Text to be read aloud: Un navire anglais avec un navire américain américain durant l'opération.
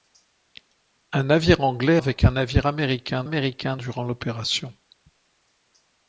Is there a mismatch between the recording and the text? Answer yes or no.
no